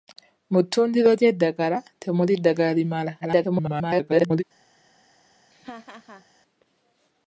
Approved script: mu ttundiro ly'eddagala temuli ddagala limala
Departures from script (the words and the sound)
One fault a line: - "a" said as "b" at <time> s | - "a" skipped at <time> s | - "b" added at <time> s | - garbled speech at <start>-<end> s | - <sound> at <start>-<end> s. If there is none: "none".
- garbled speech at 3.2-4.4 s
- laugh at 5.5-6.3 s